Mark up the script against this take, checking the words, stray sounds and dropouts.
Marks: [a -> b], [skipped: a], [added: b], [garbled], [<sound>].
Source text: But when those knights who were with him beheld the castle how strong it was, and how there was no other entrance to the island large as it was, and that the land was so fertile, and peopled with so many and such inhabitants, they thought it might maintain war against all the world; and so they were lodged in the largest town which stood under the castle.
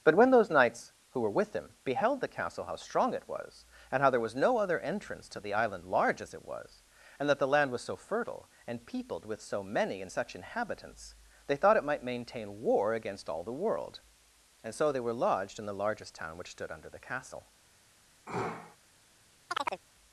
But when those knights who were with him beheld the castle how strong it was, and how there was no other entrance to the island large as it was, and that the land was so fertile, and peopled with so many and such inhabitants, they thought it might maintain war against all the world; and so they were lodged in the largest town which stood under the castle. [sneeze] [chirp]